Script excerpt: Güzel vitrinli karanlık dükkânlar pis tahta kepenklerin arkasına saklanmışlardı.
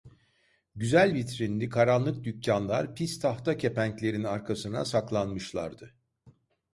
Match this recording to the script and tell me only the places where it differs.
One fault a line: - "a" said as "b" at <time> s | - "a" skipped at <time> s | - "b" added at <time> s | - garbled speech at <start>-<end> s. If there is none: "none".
none